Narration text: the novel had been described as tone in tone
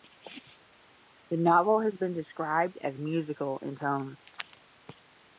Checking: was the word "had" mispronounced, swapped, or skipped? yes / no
yes